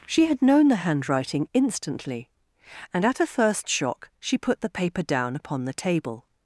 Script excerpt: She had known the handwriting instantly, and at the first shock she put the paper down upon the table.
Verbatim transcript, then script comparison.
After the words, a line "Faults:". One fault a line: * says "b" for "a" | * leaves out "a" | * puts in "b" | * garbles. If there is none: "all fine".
She had known the handwriting instantly, and at a first shock she put the paper down upon the table.
Faults:
* says "a" for "the"